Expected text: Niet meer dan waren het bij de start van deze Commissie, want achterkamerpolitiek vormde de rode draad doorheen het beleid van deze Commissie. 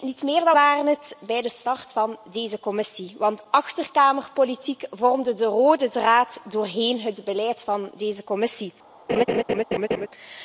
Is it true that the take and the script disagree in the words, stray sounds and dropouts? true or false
true